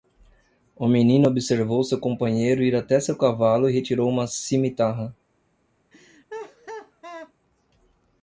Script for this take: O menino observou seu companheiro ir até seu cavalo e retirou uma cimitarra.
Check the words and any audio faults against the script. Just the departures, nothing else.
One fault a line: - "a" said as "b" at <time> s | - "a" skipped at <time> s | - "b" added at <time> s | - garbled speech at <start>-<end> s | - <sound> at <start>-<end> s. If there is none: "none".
- laugh at 5.9-7.3 s